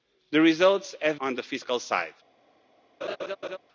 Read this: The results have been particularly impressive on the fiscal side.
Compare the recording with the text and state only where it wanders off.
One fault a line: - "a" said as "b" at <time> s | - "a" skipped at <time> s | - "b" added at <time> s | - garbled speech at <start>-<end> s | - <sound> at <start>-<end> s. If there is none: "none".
- "been particularly impressive" skipped at 1.2 s
- laugh at 3.0-3.6 s